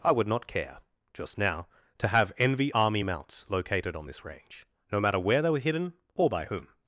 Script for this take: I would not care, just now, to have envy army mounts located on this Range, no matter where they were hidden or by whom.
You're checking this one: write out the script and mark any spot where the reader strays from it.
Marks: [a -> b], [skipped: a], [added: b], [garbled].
I would not care, just now, to have envy army mounts located on this Range, no matter where they were hidden or by whom.